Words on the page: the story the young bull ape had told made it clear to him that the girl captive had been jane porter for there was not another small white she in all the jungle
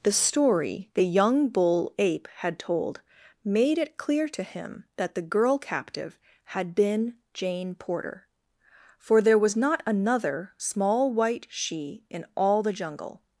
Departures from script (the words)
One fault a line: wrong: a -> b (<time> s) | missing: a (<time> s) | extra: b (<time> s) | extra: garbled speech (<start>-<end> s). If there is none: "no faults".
no faults